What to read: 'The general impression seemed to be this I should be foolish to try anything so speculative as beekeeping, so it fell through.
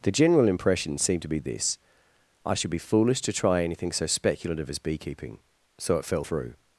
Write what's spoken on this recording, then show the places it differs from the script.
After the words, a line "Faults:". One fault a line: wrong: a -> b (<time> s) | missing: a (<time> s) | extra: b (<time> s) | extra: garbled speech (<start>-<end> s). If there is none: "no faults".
'The general impression seemed to be this I should be foolish to try anything so speculative as beekeeping, so it fell through.
Faults:
no faults